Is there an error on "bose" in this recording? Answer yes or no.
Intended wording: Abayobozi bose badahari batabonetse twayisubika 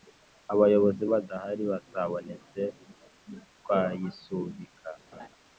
yes